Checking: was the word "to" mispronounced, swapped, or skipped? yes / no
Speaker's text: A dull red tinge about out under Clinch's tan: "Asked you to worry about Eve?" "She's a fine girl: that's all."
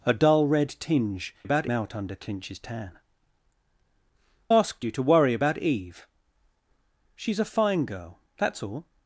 no